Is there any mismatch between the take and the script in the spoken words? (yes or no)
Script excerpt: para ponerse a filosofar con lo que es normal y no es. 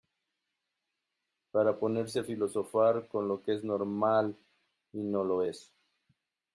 yes